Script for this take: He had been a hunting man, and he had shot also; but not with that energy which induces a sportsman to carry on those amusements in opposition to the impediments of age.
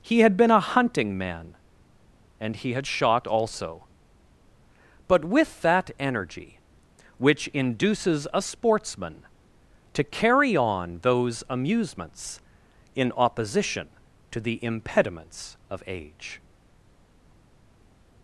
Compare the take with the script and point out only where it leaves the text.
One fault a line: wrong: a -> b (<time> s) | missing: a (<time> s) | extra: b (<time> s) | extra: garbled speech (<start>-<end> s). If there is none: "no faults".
missing: not (5.2 s)